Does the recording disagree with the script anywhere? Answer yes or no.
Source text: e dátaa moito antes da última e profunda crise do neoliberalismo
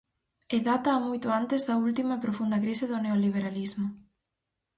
no